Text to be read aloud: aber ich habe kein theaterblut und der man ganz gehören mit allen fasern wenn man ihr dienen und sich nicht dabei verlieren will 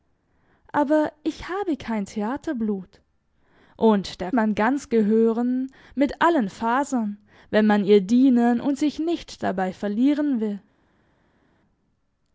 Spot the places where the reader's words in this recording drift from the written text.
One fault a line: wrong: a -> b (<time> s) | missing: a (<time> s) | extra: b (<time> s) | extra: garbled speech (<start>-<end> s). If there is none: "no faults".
no faults